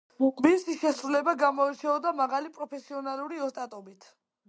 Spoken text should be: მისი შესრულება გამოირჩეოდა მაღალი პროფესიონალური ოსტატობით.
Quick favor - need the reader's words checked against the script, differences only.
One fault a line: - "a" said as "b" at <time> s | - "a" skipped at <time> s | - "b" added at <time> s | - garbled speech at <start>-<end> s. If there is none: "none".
none